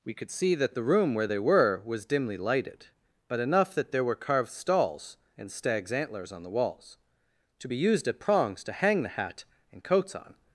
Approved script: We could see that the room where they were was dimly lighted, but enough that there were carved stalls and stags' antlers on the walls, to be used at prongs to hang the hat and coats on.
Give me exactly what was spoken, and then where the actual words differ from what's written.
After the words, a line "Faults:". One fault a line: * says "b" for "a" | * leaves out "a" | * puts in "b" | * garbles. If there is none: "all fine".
We could see that the room where they were was dimly lighted, but enough that there were carved stalls and stags' antlers on the walls, to be used at prongs to hang the hat and coats on.
Faults:
all fine